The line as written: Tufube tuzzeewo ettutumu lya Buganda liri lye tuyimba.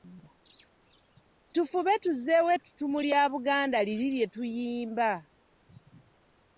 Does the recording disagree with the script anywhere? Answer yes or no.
no